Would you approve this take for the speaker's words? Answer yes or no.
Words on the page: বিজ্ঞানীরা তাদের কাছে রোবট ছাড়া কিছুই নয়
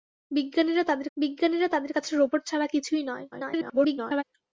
no